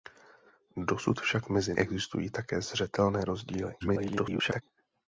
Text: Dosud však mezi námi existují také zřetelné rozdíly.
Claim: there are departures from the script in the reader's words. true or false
true